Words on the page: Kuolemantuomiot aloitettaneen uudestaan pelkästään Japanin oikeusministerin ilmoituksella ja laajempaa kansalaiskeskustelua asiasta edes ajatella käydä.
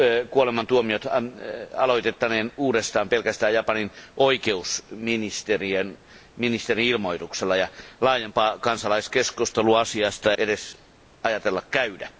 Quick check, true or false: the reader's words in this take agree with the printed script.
true